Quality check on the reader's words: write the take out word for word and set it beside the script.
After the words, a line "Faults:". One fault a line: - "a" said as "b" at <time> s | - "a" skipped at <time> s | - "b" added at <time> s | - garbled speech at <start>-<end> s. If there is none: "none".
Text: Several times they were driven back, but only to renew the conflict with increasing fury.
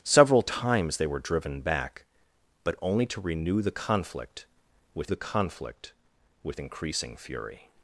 Several times they were driven back, but only to renew the conflict with the conflict with increasing fury.
Faults:
- "the conflict with" added at 5.1 s